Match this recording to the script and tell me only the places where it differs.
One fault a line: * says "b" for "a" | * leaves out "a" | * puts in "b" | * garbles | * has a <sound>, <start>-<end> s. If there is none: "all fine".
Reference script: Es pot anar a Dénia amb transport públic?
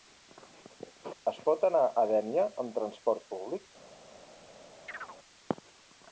* has a chirp, 4.9-5.2 s